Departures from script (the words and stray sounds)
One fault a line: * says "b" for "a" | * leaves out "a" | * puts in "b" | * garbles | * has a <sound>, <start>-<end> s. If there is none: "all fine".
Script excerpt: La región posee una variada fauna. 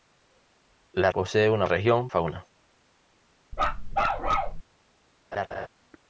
* leaves out "región"
* says "región" for "variada"
* has a bark, 3.5-4.6 s
* has a laugh, 5.3-5.7 s